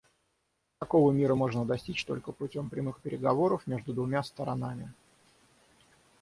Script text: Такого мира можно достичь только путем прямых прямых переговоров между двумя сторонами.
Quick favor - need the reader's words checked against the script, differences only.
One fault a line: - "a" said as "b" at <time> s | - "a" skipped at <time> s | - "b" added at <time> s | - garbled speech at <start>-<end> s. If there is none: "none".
- "прямых" skipped at 3.0 s